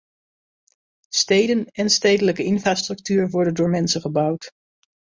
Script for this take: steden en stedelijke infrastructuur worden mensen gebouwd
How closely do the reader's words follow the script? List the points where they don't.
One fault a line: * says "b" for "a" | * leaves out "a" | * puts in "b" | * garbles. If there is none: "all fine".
* puts in "door"